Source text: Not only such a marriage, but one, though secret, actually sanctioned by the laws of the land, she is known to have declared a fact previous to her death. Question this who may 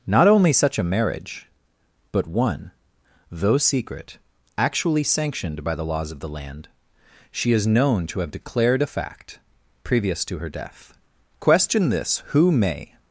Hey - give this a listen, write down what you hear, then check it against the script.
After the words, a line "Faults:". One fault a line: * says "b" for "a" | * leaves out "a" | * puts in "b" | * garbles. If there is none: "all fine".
Not only such a marriage, but one, though secret, actually sanctioned by the laws of the land, she is known to have declared a fact previous to her death. Question this who may
Faults:
all fine